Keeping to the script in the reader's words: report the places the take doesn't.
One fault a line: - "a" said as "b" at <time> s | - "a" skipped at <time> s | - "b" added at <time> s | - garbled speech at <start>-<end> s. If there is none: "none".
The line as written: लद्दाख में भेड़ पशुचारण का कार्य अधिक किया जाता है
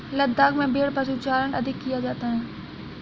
- "का कार्य" skipped at 1.5 s